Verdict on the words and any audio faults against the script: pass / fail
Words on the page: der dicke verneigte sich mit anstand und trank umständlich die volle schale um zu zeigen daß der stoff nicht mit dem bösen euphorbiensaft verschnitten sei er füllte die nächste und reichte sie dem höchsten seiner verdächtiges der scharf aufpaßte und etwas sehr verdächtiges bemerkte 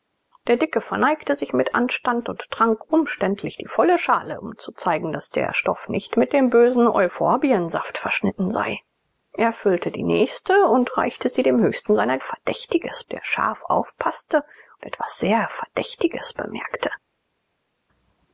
pass